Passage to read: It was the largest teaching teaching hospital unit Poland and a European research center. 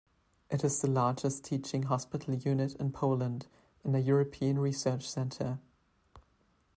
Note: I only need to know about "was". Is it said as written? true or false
false